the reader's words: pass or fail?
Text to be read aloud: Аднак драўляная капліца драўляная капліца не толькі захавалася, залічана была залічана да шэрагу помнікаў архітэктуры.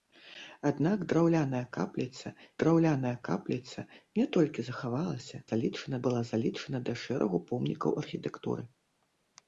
pass